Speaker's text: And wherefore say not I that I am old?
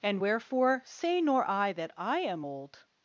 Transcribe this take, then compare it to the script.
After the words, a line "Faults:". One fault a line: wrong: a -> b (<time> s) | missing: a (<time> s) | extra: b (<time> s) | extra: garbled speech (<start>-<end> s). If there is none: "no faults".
And wherefore say nor I that I am old?
Faults:
wrong: not -> nor (1.2 s)